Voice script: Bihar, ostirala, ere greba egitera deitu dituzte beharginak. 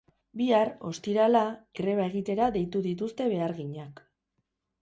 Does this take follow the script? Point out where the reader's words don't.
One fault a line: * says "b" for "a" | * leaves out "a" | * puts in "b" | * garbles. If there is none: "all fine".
* leaves out "ere"